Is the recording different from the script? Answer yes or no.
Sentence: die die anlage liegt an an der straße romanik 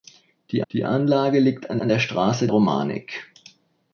no